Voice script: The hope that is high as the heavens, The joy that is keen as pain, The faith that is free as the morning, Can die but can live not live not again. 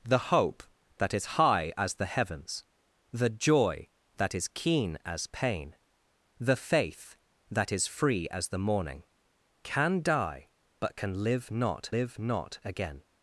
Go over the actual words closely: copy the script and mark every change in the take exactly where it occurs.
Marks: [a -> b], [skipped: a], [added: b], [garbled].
The hope that is high as the heavens, The joy that is keen as pain, The faith that is free as the morning, Can die but can live not live not again.